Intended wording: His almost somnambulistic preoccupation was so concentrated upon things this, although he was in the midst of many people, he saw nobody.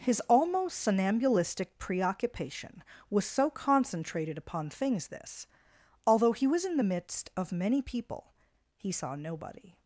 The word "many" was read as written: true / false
true